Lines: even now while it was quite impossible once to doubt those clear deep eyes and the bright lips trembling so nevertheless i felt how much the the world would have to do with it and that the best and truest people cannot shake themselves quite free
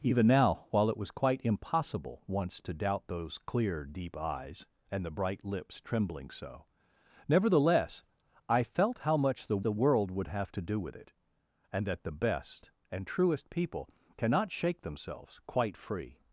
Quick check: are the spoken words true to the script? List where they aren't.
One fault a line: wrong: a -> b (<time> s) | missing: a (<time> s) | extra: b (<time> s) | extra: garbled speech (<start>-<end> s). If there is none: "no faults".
no faults